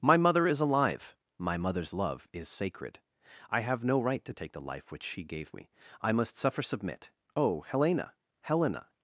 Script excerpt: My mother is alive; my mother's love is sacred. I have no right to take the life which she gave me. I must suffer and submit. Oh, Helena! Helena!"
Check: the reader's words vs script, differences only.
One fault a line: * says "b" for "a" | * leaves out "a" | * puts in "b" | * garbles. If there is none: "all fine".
* leaves out "and"